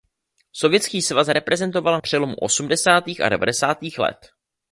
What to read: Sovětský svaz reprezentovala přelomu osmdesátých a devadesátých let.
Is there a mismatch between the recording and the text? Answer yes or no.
no